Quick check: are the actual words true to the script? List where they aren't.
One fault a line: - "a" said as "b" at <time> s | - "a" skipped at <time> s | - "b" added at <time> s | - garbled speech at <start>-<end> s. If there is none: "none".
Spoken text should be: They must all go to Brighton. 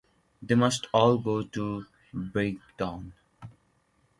none